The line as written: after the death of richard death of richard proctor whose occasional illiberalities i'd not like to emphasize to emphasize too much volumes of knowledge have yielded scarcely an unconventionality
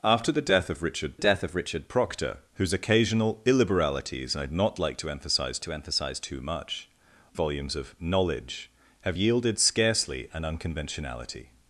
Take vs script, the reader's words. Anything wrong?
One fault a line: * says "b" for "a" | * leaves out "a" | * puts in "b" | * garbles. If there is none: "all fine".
all fine